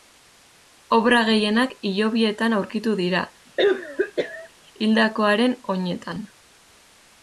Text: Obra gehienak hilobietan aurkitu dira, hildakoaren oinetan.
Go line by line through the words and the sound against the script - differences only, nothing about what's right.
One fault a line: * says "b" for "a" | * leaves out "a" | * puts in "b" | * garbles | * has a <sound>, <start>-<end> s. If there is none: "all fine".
* has a cough, 3.6-4.5 s